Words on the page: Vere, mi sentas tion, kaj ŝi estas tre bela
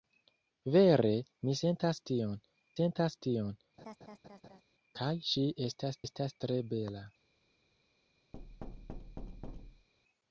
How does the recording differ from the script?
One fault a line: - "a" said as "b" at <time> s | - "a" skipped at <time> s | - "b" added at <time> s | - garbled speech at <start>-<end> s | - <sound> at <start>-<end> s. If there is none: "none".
- "sentas tion" added at 2.7 s
- laugh at 3.8-4.6 s
- "estas" added at 6.1 s
- thud at 8.3-9.9 s